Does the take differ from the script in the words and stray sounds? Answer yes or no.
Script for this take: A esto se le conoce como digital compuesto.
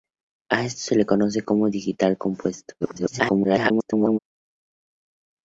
yes